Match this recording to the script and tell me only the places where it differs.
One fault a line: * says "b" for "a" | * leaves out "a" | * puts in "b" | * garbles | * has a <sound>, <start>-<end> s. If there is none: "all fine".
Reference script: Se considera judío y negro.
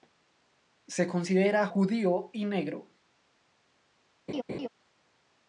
* has a laugh, 4.3-4.7 s